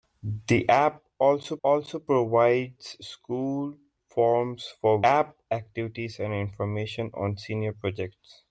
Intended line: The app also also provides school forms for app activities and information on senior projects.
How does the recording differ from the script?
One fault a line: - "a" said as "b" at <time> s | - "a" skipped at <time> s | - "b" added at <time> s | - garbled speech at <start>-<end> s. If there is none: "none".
none